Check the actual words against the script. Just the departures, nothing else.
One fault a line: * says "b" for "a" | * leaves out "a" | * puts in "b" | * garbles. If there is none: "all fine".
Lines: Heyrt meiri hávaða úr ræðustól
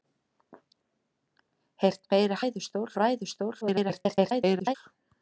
* says "ræðustól" for "hávaða"
* garbles